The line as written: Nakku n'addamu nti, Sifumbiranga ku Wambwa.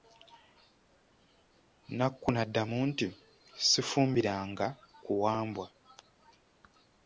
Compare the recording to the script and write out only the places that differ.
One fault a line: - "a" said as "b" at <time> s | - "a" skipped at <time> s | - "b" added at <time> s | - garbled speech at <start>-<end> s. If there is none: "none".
none